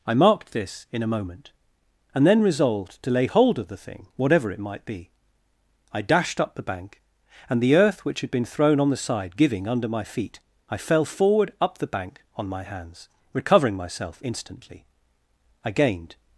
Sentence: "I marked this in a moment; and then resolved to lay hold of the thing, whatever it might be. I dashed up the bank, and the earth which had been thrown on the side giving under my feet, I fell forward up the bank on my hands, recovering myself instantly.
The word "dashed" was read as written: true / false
true